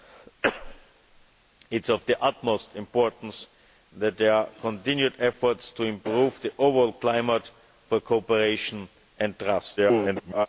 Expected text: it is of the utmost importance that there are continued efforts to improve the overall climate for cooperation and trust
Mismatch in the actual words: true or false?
true